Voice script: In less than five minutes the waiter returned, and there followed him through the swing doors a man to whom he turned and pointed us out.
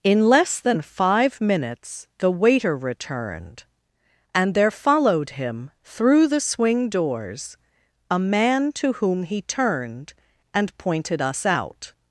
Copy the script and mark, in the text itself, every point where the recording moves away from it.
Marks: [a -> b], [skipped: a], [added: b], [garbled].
In less than five minutes the waiter returned, and there followed him through the swing doors a man to whom he turned and pointed us out.